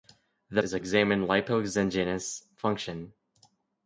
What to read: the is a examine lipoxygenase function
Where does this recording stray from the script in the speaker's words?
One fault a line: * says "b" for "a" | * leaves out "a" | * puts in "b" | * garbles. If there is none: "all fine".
all fine